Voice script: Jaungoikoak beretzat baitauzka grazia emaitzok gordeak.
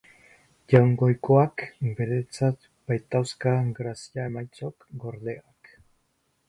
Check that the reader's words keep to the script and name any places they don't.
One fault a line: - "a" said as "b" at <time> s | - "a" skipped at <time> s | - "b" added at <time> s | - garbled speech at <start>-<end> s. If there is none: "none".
none